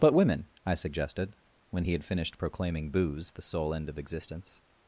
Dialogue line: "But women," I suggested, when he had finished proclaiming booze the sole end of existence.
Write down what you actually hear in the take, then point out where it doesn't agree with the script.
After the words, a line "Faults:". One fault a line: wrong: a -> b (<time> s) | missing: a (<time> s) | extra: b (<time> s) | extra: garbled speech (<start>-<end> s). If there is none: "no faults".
"But women," I suggested, when he had finished proclaiming booze the sole end of existence.
Faults:
no faults